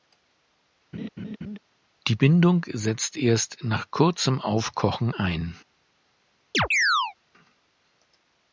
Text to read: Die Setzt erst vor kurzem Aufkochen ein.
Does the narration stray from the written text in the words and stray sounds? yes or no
yes